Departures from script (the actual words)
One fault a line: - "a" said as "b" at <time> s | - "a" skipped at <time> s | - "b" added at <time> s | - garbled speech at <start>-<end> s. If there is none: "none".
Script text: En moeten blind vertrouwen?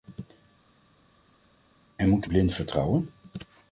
none